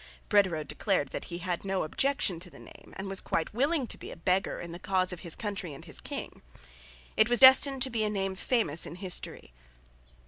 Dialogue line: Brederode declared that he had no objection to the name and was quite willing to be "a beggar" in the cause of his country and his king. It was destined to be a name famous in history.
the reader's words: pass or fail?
pass